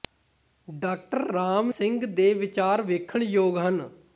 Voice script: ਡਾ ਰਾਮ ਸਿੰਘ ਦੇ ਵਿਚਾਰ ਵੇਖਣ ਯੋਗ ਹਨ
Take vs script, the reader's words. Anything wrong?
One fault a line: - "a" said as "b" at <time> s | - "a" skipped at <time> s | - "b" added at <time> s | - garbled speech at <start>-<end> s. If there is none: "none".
none